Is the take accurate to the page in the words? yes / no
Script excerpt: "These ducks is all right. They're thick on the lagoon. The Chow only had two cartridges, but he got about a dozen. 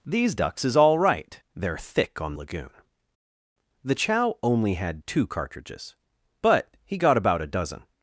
no